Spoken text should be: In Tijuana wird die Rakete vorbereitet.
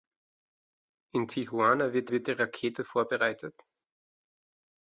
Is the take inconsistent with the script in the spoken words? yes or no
yes